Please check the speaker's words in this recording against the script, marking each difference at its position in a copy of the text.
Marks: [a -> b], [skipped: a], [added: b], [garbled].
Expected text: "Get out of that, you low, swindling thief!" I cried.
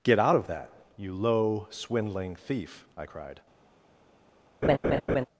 "Get out of that, you low, swindling thief!" I cried.